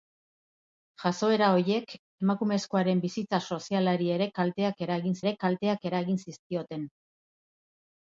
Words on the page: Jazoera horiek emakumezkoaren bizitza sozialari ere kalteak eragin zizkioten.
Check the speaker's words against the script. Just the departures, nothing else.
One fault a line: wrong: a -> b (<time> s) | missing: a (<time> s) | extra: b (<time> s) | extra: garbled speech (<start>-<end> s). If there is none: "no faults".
extra: ere kalteak eragin (5.2 s)